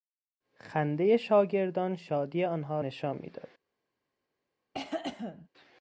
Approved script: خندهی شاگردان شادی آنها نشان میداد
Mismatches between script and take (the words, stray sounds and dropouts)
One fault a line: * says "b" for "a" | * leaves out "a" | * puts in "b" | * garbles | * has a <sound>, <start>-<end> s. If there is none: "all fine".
* has a cough, 4.7-5.5 s